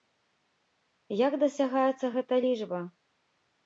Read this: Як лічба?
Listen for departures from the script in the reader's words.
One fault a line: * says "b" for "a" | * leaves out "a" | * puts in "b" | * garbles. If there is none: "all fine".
* puts in "дасягаецца гэта"